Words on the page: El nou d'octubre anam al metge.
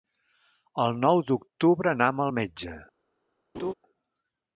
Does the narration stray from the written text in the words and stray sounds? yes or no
yes